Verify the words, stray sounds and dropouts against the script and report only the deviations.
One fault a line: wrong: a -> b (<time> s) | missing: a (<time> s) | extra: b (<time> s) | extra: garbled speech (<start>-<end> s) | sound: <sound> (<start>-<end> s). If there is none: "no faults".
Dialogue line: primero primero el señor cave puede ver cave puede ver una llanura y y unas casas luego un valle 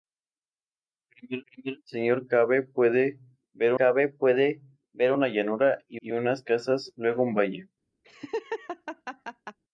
sound: laugh (8.0-9.6 s)